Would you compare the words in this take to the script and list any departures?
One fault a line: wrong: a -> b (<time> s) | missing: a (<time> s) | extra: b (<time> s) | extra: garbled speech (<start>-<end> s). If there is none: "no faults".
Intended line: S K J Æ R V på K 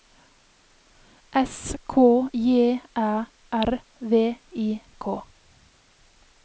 wrong: på -> I (4.5 s)